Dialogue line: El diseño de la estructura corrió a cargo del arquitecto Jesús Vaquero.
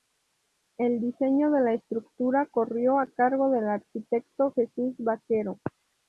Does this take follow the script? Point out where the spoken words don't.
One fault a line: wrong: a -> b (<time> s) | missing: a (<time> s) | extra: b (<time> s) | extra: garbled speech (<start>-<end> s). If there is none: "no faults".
no faults